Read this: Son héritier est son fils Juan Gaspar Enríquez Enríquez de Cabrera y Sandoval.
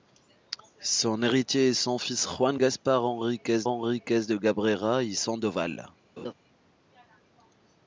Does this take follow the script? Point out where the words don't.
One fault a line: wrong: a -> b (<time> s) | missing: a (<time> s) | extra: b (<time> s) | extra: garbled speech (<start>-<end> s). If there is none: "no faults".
no faults